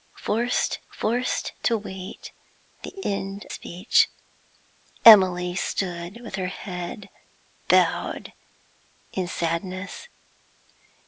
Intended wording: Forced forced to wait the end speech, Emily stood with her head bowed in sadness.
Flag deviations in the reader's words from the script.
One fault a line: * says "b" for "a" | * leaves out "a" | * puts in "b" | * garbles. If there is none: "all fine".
all fine